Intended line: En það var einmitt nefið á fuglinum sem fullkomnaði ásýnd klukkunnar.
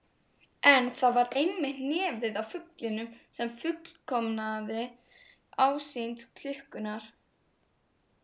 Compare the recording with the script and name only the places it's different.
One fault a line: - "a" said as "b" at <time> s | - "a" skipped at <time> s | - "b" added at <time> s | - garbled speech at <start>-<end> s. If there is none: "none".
none